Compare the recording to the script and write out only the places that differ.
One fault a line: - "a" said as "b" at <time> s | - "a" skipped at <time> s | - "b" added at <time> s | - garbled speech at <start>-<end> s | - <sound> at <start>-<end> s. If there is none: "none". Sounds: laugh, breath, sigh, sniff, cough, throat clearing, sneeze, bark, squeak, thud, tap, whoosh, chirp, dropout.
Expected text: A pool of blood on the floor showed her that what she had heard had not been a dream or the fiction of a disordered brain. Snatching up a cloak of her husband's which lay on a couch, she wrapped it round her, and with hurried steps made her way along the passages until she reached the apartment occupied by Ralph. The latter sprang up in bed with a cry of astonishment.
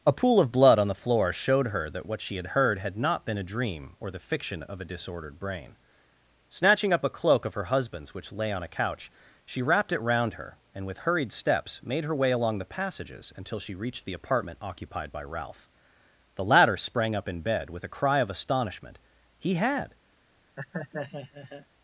- "He had" added at 19.4 s
- laugh at 20.6-21.7 s